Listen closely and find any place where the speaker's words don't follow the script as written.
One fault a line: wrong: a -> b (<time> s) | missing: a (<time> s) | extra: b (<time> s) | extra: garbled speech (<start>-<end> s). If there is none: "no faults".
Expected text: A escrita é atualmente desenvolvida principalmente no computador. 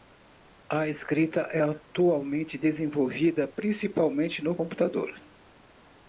no faults